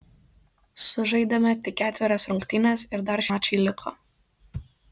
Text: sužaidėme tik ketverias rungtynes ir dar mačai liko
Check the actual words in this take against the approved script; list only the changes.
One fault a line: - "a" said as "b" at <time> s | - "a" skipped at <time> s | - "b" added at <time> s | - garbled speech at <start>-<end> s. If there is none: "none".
none